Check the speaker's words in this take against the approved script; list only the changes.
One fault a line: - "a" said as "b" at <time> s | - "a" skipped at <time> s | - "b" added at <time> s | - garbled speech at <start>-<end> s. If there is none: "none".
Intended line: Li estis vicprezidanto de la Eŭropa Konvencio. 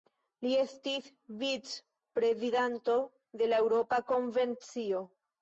none